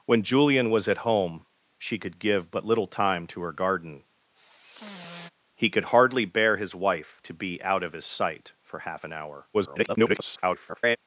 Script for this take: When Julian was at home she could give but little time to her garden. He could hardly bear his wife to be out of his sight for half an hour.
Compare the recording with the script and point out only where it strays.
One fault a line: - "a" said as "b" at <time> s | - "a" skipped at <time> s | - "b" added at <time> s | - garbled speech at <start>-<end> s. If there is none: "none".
- garbled speech at 9.5-11.0 s